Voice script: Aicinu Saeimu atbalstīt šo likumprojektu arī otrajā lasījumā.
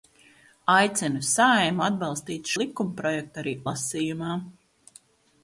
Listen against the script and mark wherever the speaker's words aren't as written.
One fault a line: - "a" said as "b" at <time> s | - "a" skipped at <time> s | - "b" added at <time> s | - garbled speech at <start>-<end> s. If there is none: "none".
- "šo" skipped at 2.5 s
- "otrajā" skipped at 3.5 s